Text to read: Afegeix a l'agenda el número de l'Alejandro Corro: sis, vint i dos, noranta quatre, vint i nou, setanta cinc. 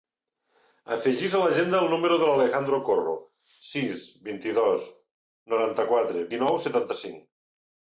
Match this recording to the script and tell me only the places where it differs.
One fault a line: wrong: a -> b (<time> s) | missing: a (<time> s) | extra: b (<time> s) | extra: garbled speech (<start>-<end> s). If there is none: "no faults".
missing: vint (6.2 s)